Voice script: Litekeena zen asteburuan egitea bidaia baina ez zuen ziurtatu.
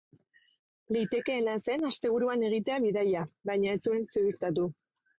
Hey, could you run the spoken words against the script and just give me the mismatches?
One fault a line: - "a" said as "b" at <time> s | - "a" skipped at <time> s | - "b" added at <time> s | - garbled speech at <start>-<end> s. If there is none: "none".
none